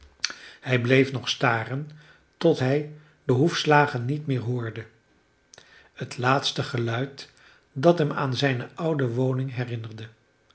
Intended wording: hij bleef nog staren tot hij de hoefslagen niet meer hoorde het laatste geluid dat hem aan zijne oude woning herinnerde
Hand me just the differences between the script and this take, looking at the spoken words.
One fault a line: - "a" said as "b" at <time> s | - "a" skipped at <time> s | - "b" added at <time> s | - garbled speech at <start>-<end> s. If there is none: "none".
none